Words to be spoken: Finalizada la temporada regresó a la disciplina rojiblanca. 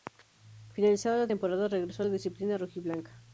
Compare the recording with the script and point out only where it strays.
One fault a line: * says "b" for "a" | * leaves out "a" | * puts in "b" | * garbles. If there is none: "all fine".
all fine